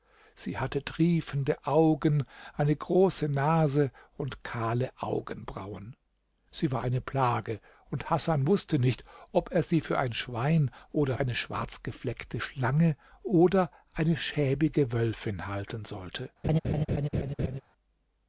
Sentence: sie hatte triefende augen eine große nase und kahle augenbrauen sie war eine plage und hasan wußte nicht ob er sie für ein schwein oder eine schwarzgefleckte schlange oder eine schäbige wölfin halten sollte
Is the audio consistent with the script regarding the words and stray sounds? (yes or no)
no